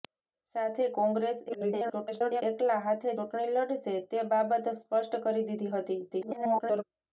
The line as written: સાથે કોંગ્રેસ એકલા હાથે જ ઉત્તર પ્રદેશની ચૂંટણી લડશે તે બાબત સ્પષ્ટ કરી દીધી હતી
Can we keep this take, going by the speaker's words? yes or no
no